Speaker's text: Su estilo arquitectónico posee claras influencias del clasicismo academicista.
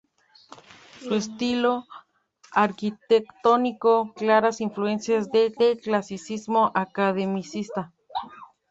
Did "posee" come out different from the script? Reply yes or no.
yes